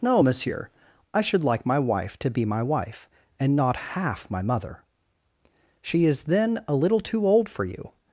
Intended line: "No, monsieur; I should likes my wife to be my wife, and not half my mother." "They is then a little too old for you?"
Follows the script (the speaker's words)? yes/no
no